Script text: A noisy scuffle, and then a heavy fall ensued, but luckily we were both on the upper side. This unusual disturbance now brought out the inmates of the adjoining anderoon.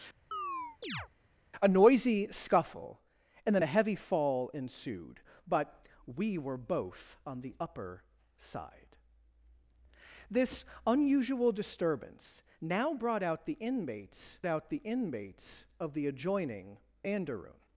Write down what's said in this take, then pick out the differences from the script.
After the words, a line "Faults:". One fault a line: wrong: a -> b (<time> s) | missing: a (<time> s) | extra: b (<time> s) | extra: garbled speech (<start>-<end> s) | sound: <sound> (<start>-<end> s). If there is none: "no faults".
A noisy scuffle, and then a heavy fall ensued, but we were both on the upper side. This unusual disturbance now brought out the inmates out the inmates of the adjoining anderoon.
Faults:
sound: chirp (0.3-1.1 s)
missing: luckily (5.9 s)
extra: out the inmates (14.5 s)